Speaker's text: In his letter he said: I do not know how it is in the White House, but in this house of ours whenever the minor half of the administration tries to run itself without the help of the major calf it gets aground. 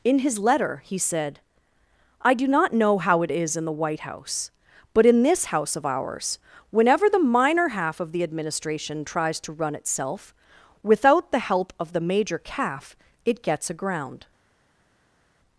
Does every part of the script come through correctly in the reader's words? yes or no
yes